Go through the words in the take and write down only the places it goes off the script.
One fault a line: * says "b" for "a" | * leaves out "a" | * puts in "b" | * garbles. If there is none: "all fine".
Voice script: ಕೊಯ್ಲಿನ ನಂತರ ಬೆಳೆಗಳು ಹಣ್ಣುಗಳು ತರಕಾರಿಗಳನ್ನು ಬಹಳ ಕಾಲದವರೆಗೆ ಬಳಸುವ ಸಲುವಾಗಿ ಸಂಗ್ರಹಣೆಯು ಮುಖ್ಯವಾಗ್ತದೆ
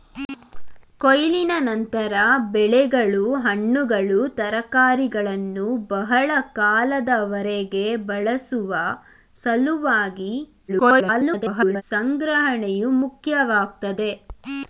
* garbles